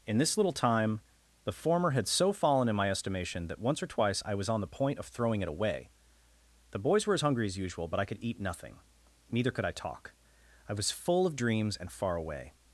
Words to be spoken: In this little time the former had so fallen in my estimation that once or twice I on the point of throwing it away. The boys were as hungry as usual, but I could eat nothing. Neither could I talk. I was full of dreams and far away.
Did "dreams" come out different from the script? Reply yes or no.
no